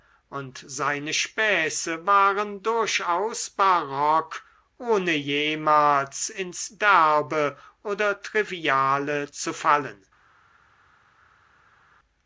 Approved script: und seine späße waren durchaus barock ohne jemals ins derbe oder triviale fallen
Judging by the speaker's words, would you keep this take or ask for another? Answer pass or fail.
fail